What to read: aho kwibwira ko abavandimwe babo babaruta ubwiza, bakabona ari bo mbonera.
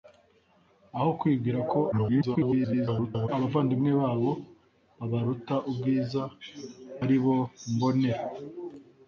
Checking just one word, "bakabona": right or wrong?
wrong